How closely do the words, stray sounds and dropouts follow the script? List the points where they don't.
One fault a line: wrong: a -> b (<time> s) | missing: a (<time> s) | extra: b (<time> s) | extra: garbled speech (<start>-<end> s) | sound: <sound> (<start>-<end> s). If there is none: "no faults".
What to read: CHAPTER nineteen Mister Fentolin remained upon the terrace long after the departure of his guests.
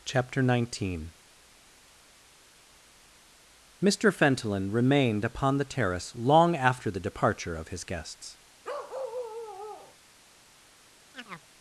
sound: bark (8.6-10.0 s)
sound: chirp (11.1-11.5 s)